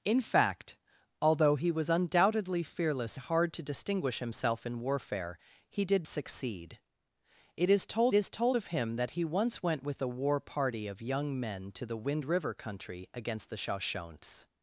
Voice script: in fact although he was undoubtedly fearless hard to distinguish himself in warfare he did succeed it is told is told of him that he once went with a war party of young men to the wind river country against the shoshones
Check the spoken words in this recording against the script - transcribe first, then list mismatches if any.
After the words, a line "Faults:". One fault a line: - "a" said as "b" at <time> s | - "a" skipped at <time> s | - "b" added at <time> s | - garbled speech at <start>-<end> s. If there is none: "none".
in fact although he was undoubtedly fearless hard to distinguish himself in warfare he did succeed it is told is told of him that he once went with a war party of young men to the wind river country against the shoshones
Faults:
none